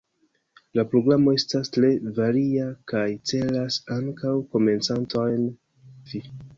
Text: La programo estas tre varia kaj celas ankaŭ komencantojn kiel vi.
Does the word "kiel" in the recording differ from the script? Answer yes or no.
yes